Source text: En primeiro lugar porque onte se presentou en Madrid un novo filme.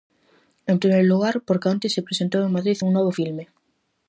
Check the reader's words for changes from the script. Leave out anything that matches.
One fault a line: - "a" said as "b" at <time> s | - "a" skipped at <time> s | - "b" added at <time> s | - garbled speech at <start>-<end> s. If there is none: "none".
none